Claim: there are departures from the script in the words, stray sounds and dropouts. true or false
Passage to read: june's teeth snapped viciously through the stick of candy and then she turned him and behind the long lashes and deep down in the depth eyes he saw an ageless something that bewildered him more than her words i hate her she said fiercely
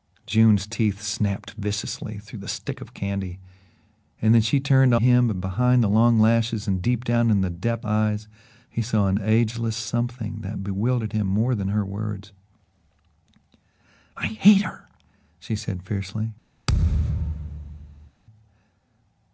true